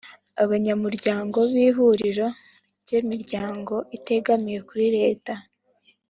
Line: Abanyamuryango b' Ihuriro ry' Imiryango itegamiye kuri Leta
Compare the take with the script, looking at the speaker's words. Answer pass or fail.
pass